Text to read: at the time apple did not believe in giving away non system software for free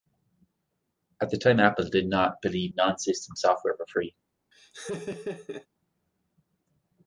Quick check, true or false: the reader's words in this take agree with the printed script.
false